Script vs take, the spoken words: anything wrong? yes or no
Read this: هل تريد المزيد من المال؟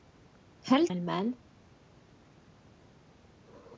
yes